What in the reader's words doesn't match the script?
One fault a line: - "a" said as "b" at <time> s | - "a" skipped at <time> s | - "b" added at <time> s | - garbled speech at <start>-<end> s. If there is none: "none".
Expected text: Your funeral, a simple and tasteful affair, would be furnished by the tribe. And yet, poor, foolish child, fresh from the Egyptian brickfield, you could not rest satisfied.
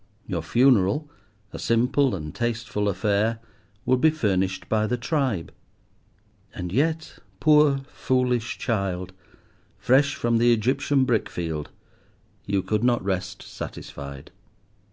none